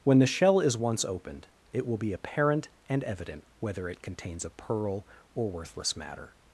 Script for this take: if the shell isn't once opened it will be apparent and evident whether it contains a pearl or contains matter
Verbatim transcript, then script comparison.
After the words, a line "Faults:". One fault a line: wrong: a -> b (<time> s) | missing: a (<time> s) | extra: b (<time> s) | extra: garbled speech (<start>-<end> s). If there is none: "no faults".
when the shell is once opened it will be apparent and evident whether it contains a pearl or worthless matter
Faults:
wrong: if -> when (0.0 s)
wrong: isn't -> is (0.6 s)
wrong: contains -> worthless (5.5 s)